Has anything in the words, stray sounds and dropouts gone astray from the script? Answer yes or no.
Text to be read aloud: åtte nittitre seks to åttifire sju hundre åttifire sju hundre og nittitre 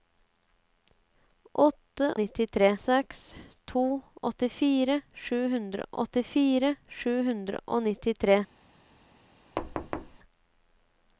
yes